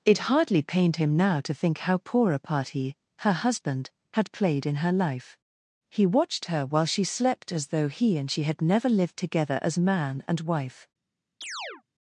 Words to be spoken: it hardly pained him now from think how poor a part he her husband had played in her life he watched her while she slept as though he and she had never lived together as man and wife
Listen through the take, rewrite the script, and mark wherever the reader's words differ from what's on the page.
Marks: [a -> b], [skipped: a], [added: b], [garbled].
it hardly pained him now [from -> to] think how poor a part he her husband had played in her life he watched her while she slept as though he and she had never lived together as man and wife